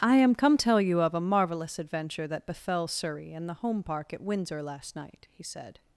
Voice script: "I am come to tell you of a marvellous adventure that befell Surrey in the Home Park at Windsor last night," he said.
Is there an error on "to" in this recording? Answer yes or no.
yes